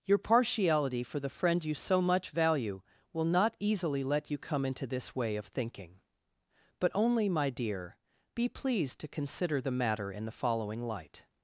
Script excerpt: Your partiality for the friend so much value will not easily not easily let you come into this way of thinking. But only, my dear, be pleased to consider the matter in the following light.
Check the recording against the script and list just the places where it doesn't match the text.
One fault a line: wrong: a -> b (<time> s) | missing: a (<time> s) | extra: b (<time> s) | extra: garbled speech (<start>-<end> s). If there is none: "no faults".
extra: you (1.6 s)
missing: not easily (4.0 s)